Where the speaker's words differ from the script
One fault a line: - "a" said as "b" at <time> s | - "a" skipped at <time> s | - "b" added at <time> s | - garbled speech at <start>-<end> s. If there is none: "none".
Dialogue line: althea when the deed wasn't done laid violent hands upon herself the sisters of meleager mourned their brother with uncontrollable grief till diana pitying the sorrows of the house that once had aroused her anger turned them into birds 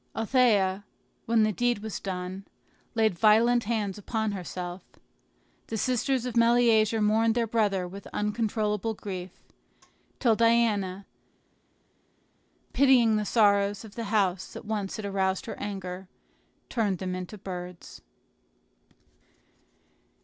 - "wasn't" said as "was" at 1.8 s